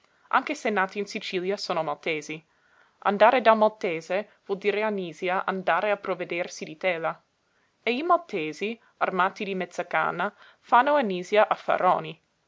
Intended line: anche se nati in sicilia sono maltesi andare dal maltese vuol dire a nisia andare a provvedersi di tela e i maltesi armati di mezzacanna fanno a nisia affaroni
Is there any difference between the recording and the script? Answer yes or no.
no